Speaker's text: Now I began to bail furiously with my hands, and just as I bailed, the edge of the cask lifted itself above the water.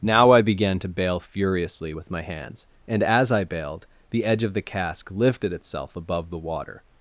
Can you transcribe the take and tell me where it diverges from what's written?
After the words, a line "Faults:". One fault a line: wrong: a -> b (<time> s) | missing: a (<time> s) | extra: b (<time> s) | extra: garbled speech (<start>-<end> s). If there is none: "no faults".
Now I began to bail furiously with my hands, and as I bailed, the edge of the cask lifted itself above the water.
Faults:
missing: just (3.0 s)